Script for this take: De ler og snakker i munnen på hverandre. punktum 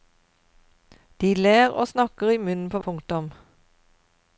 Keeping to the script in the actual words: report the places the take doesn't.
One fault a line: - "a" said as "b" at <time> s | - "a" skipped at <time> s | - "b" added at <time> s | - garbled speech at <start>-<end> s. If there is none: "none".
- "hverandre" skipped at 2.8 s